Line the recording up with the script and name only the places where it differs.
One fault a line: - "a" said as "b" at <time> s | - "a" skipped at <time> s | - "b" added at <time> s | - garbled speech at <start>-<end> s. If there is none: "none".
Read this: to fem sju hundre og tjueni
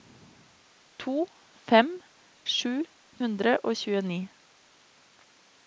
none